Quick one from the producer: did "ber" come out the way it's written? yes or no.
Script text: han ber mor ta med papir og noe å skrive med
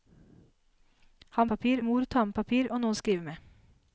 no